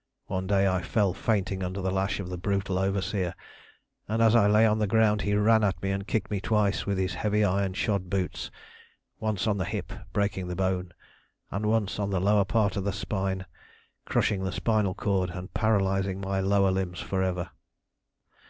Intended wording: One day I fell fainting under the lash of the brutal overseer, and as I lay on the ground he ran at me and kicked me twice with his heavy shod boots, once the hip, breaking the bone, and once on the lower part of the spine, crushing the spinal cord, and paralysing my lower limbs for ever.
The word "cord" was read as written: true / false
true